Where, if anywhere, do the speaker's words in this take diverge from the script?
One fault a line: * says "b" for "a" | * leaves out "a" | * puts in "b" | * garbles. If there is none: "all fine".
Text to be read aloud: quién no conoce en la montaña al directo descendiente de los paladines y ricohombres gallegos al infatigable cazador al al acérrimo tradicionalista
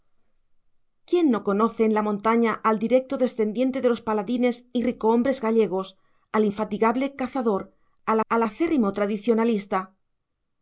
all fine